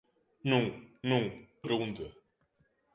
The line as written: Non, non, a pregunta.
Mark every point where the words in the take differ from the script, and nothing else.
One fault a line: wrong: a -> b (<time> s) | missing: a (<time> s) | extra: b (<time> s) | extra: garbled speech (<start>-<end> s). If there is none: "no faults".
no faults